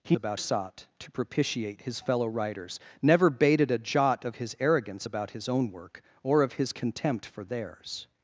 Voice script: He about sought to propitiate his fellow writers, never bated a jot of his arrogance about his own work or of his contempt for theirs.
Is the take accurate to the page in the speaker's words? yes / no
yes